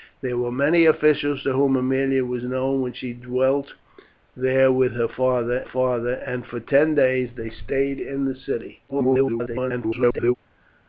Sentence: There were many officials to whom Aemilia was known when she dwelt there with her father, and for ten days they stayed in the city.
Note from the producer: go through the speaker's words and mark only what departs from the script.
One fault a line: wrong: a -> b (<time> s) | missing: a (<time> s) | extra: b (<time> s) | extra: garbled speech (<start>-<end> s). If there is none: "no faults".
extra: father (5.6 s)
extra: garbled speech (8.9-10.3 s)